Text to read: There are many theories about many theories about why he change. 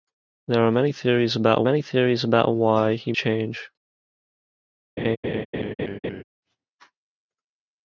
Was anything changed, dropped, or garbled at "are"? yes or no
no